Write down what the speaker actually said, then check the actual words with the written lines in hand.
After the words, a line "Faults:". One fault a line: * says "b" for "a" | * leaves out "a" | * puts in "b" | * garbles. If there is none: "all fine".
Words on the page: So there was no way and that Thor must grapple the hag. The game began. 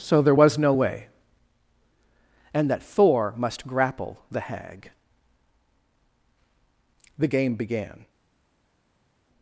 So there was no way and that Thor must grapple the hag. The game began.
Faults:
all fine